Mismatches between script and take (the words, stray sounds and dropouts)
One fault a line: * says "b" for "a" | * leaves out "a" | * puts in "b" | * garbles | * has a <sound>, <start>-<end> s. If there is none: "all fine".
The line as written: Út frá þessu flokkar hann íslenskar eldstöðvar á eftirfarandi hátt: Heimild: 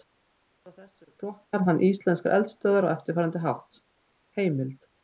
all fine